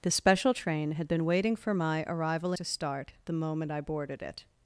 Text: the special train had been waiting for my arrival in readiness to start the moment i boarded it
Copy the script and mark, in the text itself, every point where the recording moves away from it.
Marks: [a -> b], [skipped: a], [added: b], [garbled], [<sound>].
the special train had been waiting for my arrival [skipped: in readiness] to start the moment i boarded it